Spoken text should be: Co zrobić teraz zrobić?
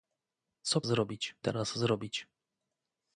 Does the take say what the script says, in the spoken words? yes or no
yes